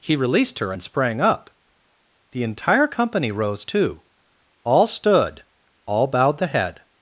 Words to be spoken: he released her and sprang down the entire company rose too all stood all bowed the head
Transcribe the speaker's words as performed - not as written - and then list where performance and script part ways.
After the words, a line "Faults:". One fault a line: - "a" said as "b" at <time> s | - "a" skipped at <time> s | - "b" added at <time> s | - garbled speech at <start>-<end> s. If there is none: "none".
he released her and sprang up the entire company rose too all stood all bowed the head
Faults:
- "down" said as "up" at 1.2 s